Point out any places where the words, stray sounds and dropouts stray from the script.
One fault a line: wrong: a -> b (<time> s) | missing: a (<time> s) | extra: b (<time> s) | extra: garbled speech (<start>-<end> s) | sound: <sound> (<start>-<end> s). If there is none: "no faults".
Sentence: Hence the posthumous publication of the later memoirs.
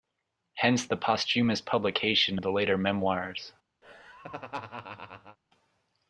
sound: laugh (3.8-5.4 s)